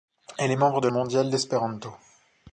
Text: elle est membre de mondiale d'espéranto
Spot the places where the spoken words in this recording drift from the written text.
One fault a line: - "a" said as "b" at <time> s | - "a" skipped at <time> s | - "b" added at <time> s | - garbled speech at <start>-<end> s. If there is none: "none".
none